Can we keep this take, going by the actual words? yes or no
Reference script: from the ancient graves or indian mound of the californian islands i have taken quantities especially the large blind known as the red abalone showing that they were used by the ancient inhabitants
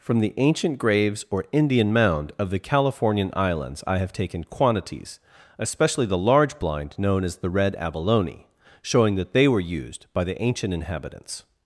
yes